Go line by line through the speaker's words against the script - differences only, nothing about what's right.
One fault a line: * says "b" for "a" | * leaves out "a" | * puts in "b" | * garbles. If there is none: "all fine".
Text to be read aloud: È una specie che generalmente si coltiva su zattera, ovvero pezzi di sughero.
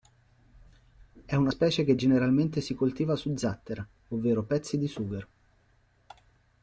all fine